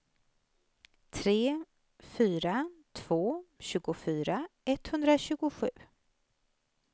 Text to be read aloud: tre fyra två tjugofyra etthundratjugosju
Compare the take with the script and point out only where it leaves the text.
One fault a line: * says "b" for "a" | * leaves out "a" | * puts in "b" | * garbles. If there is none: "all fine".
all fine